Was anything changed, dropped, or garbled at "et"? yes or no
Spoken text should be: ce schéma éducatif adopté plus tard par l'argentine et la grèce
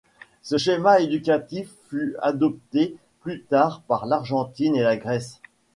no